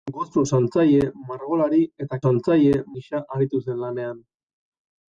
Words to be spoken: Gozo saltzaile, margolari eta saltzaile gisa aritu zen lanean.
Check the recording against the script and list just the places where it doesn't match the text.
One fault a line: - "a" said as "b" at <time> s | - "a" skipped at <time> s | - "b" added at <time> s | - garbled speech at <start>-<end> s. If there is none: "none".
none